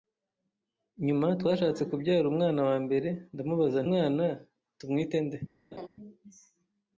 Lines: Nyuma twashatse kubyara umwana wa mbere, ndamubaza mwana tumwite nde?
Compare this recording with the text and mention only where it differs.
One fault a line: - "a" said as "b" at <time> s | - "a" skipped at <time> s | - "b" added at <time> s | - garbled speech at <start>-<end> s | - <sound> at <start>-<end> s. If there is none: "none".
- laugh at 5.7-5.9 s